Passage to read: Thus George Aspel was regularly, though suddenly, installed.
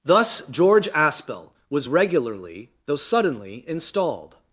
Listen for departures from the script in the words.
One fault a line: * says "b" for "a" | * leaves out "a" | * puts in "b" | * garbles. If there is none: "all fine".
all fine